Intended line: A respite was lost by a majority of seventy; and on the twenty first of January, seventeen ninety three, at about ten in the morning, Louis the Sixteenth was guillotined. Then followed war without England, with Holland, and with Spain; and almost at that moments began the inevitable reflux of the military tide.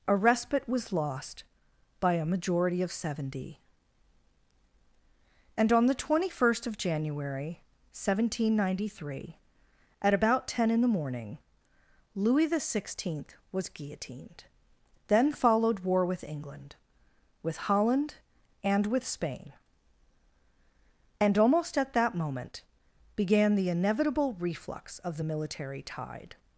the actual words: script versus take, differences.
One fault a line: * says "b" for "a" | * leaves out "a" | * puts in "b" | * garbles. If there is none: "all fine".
* says "with" for "without"
* says "moment" for "moments"